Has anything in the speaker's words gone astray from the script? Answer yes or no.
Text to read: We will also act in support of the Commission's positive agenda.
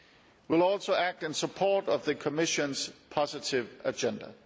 no